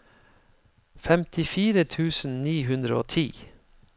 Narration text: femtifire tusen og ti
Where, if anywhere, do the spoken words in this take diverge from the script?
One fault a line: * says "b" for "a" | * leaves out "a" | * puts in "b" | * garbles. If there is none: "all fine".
* puts in "ni hundre"